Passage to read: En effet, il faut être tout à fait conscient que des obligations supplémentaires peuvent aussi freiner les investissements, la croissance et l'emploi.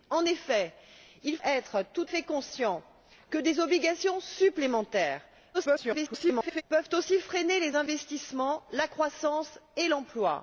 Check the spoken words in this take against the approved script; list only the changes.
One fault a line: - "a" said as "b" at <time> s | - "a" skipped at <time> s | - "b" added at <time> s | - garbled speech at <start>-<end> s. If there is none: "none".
- "faut" skipped at 1.4 s
- "à" skipped at 2.1 s
- garbled speech at 5.5-6.6 s